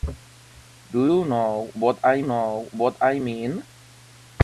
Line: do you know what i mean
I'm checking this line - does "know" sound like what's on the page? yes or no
yes